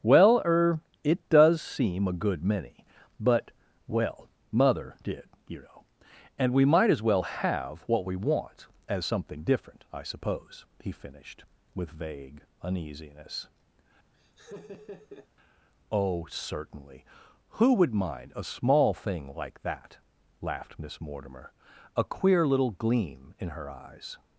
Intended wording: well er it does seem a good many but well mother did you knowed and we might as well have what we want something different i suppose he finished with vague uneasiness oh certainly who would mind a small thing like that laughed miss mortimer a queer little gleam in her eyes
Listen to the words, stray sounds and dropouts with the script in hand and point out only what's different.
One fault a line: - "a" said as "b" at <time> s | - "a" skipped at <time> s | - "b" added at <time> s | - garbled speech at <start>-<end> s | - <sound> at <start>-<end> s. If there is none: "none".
- "knowed" said as "know" at 5.6 s
- "as" added at 8.9 s
- laugh at 14.1-15.3 s